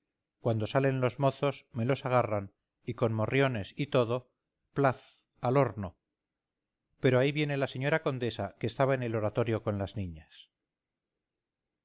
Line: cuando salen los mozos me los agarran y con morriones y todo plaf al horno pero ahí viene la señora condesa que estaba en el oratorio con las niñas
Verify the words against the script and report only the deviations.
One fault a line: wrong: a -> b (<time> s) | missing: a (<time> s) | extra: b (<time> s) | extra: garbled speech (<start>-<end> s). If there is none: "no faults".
no faults